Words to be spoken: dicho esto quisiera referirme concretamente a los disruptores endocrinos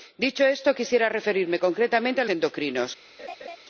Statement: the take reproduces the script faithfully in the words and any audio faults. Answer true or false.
false